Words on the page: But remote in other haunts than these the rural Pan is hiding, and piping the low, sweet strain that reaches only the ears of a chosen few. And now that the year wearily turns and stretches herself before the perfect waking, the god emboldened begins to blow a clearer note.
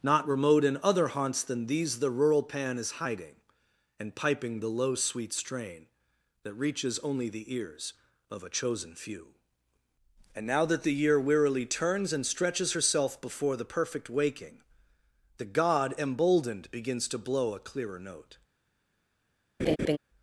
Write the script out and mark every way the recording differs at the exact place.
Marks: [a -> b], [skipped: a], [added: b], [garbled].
[But -> Not] remote in other haunts than these the rural Pan is hiding, and piping the low, sweet strain that reaches only the ears of a chosen few. And now that the year wearily turns and stretches herself before the perfect waking, the god emboldened begins to blow a clearer note.